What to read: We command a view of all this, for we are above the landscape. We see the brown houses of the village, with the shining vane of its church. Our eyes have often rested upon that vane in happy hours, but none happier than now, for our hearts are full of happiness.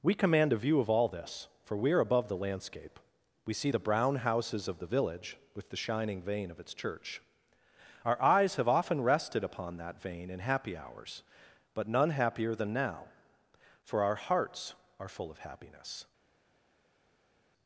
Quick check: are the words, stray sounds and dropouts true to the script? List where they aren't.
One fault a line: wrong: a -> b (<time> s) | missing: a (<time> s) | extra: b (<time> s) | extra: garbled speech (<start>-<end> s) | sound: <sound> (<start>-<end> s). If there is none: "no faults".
no faults